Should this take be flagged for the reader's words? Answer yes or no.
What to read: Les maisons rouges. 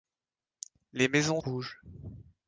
no